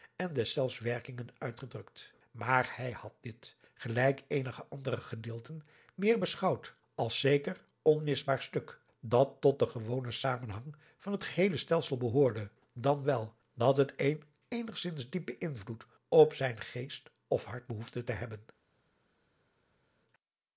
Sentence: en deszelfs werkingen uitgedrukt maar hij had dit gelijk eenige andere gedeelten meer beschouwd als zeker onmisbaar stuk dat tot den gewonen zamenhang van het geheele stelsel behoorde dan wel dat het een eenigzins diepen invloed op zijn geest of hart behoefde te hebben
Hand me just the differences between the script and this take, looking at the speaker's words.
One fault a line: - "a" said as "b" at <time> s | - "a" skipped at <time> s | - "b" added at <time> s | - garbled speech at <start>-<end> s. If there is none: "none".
none